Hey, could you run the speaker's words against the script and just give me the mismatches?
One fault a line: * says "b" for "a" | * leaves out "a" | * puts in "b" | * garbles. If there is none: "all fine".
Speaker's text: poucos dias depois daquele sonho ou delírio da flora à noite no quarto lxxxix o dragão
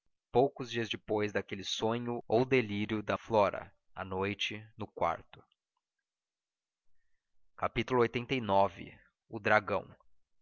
all fine